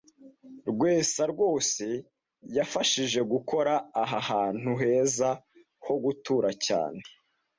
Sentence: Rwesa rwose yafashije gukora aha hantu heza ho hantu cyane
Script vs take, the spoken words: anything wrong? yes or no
yes